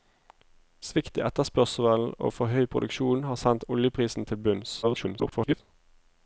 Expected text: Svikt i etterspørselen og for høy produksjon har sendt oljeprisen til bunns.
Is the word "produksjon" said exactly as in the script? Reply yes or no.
yes